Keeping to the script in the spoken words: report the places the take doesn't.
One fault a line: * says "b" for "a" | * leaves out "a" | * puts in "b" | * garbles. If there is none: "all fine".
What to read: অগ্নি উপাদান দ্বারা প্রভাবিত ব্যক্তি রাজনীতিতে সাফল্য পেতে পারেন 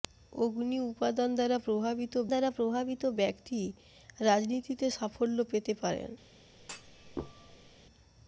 * puts in "দ্বারা প্রভাবিত"